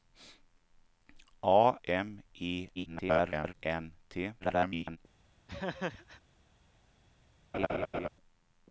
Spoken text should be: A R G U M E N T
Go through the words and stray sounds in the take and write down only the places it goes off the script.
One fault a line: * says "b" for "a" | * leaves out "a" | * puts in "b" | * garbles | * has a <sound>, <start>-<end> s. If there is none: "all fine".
* leaves out "R G U"
* garbles
* garbles
* has a laugh, 5.5-6.2 s
* has a laugh, 7.5-8.1 s